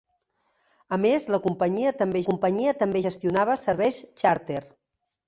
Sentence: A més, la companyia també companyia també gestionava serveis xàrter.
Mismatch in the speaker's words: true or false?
false